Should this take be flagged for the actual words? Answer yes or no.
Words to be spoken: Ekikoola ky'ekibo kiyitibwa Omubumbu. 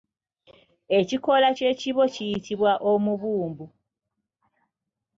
no